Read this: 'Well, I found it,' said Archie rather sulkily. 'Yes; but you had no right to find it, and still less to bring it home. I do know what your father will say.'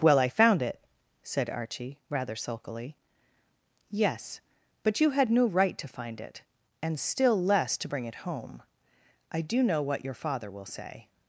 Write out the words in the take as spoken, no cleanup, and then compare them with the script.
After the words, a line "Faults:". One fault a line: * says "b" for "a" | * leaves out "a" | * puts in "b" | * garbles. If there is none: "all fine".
'Well, I found it,' said Archie rather sulkily. 'Yes; but you had no right to find it, and still less to bring it home. I do know what your father will say.'
Faults:
all fine